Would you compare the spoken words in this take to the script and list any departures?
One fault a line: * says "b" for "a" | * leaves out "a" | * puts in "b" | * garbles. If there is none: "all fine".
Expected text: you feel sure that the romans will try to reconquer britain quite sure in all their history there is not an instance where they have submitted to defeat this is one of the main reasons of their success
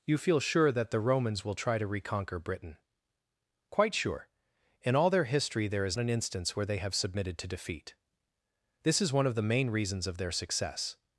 * leaves out "not"